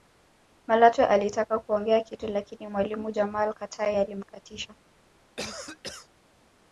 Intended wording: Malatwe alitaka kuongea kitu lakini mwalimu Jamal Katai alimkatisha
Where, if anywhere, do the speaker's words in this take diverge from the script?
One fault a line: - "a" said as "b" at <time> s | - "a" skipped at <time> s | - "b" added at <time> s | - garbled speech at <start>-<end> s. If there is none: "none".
none